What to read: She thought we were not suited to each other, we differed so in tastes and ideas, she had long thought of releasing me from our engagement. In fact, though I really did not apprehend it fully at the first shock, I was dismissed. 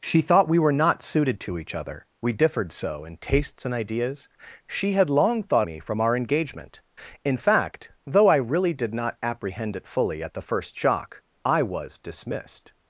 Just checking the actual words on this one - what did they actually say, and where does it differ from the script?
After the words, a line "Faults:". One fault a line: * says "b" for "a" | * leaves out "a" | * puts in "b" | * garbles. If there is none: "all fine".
She thought we were not suited to each other, we differed so in tastes and ideas, she had long thought me from our engagement. In fact, though I really did not apprehend it fully at the first shock, I was dismissed.
Faults:
* leaves out "of releasing"